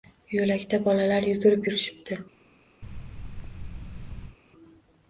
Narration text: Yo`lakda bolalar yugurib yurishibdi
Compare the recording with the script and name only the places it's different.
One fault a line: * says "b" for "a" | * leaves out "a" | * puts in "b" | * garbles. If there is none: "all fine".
all fine